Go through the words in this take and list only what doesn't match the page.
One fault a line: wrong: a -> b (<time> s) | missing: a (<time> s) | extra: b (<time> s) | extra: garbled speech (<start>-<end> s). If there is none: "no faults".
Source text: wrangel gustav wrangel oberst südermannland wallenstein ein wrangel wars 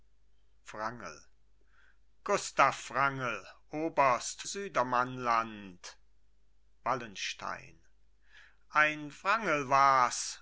no faults